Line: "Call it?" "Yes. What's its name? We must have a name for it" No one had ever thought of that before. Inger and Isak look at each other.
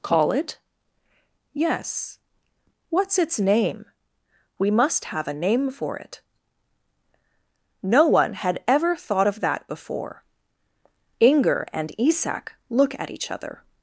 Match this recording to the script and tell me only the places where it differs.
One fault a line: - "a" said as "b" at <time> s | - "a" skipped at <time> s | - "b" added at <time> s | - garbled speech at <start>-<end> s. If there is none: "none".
none